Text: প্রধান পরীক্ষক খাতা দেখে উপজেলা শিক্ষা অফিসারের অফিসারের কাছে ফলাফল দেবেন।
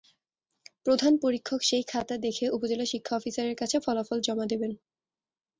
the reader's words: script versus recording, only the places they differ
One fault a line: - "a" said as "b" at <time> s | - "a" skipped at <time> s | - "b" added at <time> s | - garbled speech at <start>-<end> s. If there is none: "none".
- "সেই" added at 1.6 s
- "অফিসারের" skipped at 3.5 s
- "জমা" added at 4.2 s